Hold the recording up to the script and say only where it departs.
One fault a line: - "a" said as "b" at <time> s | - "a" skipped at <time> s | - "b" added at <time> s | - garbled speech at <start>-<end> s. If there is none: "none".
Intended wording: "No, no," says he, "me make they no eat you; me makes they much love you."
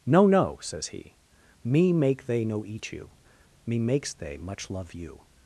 none